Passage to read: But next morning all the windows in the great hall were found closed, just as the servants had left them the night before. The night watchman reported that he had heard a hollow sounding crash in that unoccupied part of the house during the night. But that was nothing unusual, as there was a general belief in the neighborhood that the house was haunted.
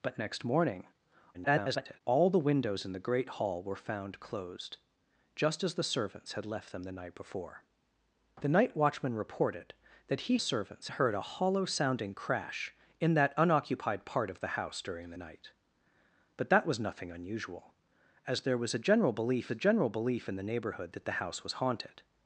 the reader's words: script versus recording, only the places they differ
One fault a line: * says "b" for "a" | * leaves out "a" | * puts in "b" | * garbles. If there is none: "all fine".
* garbles
* says "servants" for "had"
* puts in "a general belief"